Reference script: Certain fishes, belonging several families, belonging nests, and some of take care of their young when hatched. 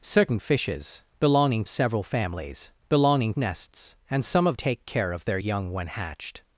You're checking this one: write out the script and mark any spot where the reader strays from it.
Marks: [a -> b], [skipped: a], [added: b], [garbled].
Certain fishes, belonging several families, belonging nests, and some of take care of their young when hatched.